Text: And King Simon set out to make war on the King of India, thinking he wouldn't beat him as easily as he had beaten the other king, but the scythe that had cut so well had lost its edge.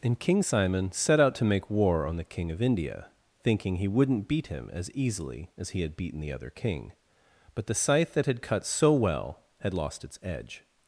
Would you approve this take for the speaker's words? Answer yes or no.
yes